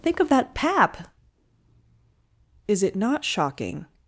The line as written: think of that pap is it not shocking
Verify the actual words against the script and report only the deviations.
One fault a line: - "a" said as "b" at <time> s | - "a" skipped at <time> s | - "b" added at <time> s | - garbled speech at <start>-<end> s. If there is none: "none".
none